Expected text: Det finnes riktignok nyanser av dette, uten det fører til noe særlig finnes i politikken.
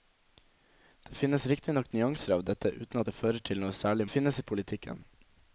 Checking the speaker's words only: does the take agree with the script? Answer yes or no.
yes